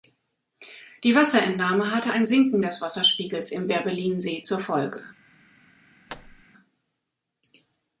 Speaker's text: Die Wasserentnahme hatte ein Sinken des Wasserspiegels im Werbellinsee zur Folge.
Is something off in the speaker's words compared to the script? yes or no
no